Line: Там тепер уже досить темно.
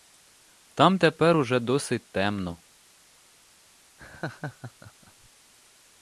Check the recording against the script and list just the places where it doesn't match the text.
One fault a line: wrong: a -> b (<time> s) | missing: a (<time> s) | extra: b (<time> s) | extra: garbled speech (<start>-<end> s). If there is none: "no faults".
no faults